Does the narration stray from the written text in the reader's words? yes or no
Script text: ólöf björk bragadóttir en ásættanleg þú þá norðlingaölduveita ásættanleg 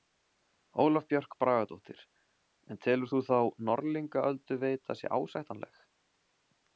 yes